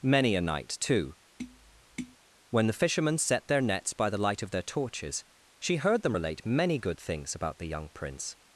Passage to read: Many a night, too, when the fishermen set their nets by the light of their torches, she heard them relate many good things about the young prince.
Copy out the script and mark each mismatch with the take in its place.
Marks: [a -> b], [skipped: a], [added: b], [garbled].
Many a night, too, when the fishermen set their nets by the light of their torches, she heard them relate many good things about the young prince.